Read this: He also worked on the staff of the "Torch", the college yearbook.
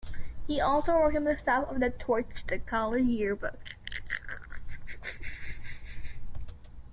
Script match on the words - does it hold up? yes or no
yes